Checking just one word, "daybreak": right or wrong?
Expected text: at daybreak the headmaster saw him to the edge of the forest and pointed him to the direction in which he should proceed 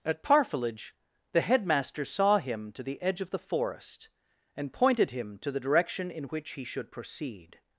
wrong